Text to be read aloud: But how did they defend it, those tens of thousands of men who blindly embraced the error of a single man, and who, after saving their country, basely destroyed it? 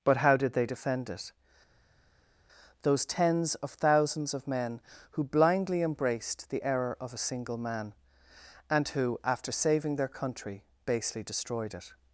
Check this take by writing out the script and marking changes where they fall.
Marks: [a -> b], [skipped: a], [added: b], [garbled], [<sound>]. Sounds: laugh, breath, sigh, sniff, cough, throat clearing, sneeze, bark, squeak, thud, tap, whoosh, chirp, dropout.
But how did they defend it, those tens of thousands of men who blindly embraced the error of a single man, and who, after saving their country, basely destroyed it?